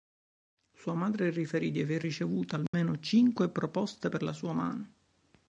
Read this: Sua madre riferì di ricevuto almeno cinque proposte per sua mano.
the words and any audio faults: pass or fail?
fail